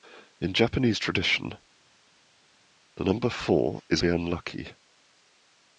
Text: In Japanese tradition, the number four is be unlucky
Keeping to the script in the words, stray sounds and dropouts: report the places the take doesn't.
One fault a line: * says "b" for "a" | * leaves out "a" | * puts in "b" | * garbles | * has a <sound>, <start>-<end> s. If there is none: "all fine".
all fine